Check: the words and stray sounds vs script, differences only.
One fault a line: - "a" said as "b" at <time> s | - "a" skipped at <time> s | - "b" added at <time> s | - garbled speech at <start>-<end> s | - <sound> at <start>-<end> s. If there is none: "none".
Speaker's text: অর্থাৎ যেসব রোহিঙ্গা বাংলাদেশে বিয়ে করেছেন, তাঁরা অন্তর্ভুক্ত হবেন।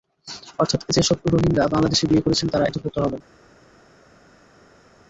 none